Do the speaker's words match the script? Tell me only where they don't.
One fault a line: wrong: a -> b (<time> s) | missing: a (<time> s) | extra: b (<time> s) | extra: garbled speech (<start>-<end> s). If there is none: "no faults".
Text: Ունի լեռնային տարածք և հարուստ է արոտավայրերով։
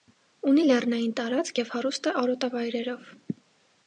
no faults